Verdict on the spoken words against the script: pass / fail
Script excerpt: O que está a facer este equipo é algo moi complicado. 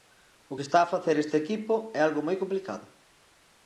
pass